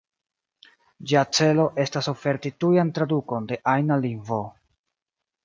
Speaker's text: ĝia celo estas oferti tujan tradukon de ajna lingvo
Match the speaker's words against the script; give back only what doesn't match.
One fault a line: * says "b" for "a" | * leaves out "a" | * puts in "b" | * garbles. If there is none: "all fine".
all fine